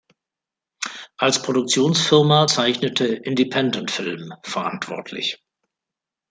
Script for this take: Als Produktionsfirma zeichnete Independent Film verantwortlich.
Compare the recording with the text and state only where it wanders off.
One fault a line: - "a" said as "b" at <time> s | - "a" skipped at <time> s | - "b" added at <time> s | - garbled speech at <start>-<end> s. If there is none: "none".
none